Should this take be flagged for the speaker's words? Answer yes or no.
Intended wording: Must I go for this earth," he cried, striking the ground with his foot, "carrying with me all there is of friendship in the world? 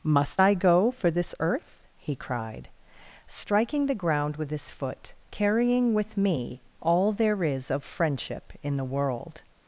no